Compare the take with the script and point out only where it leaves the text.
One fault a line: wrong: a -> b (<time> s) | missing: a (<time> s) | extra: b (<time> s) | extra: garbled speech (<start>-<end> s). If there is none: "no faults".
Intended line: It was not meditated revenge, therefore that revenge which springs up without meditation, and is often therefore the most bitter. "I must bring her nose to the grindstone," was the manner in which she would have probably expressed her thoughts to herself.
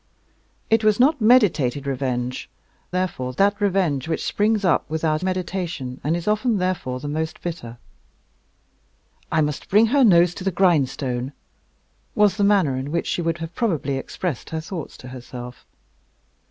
no faults